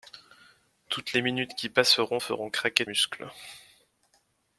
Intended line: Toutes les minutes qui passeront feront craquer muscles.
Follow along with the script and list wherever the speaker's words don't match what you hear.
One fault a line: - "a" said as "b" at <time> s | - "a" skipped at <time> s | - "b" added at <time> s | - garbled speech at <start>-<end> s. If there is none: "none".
none